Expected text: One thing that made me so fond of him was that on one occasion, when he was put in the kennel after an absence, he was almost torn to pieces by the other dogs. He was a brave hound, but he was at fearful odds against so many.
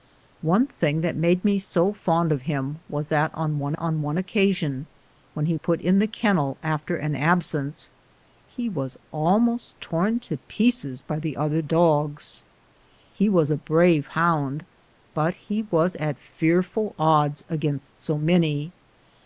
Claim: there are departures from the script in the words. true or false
true